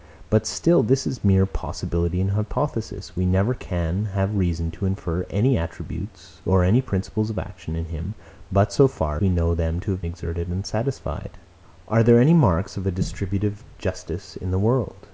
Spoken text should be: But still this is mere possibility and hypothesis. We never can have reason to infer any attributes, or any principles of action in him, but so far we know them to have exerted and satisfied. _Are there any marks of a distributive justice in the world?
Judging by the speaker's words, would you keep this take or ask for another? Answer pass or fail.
pass